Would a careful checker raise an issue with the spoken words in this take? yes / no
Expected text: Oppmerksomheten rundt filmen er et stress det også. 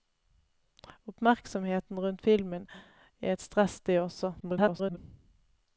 yes